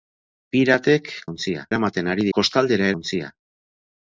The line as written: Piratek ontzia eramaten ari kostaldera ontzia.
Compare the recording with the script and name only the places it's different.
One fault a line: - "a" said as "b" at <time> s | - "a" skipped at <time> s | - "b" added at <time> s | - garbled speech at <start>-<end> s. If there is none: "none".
none